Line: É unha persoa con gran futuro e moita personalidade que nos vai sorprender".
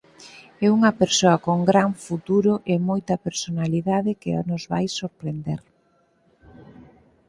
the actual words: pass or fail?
pass